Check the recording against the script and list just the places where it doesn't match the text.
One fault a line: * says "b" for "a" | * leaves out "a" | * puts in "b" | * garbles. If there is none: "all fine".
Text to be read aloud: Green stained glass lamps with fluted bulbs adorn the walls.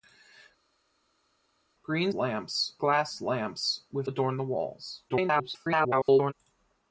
* says "lamps" for "stained"
* leaves out "fluted bulbs"
* garbles